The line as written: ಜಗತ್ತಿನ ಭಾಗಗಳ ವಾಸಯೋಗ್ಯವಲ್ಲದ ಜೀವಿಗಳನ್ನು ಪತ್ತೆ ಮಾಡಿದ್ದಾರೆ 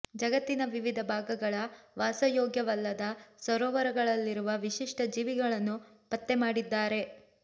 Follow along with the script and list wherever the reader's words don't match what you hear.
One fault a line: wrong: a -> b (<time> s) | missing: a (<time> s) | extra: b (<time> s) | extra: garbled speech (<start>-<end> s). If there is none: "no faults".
extra: ವಿವಿಧ (0.7 s)
extra: ಸರೋವರಗಳಲ್ಲಿರುವ ವಿಶಿಷ್ಟ (3.4 s)